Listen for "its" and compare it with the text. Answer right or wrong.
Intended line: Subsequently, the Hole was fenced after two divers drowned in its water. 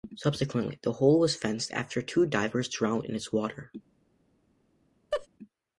right